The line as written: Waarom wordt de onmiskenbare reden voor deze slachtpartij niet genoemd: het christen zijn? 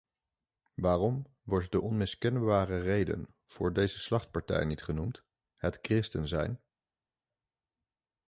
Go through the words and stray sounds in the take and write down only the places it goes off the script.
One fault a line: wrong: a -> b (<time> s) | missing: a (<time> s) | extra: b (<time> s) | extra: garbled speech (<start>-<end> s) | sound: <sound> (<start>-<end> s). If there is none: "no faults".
no faults